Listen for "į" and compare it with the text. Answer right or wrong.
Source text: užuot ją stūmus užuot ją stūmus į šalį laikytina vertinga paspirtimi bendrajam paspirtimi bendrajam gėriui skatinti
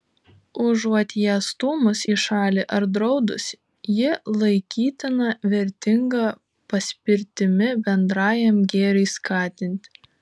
wrong